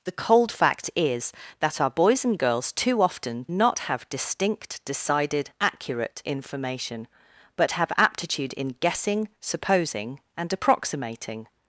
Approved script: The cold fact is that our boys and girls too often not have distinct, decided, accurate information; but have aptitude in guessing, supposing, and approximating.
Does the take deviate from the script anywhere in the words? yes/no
no